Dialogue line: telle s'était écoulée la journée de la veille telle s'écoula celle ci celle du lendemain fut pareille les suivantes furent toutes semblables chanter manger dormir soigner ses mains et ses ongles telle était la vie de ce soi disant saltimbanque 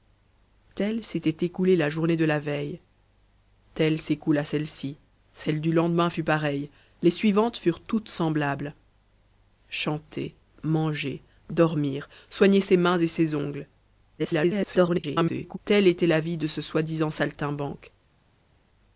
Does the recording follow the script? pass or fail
fail